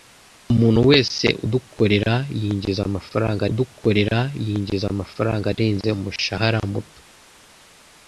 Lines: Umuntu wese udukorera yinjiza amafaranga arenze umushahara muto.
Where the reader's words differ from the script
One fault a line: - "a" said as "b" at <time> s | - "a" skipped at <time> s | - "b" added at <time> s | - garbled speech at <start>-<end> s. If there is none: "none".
- "udukorera yinjiza amafaranga" added at 3.5 s